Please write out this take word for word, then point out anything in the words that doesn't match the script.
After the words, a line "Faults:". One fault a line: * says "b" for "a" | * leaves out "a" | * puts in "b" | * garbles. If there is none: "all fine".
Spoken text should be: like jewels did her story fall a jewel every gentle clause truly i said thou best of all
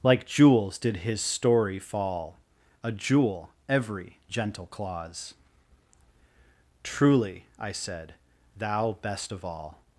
like jewels did his story fall a jewel every gentle clause truly i said thou best of all
Faults:
* says "his" for "her"